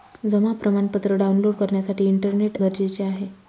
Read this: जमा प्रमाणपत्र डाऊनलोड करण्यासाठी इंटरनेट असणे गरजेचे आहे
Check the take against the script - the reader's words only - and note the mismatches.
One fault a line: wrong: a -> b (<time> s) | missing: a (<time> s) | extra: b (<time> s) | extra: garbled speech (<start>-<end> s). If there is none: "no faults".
missing: असणे (2.6 s)